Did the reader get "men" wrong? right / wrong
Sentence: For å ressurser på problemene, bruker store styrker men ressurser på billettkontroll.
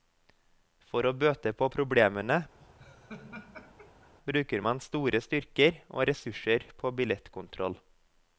wrong